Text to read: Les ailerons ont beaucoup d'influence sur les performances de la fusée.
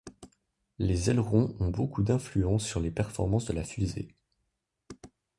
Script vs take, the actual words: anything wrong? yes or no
no